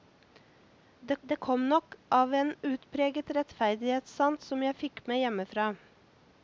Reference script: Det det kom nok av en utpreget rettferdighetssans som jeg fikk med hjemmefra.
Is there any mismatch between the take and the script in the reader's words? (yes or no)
no